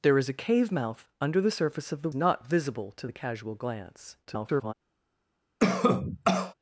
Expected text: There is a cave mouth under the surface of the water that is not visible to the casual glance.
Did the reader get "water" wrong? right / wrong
wrong